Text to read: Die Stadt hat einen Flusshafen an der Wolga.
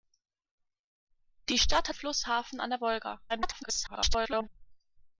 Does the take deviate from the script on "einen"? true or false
true